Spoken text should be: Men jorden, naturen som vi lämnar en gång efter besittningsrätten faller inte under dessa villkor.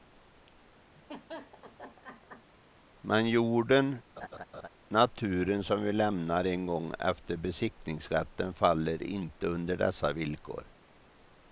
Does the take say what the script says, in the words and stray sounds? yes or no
no